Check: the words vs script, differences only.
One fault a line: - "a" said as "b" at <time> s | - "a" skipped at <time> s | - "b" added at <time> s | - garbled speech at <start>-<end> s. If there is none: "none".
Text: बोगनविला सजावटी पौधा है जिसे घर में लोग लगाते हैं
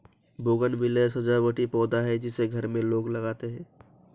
none